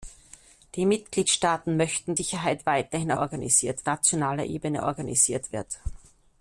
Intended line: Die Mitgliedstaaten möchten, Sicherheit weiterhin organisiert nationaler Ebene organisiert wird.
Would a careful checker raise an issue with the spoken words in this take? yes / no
no